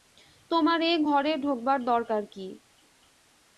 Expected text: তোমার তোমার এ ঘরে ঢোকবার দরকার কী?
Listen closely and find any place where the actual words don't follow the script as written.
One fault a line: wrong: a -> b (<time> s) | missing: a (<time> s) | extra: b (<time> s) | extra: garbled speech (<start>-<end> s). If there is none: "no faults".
missing: তোমার (0.8 s)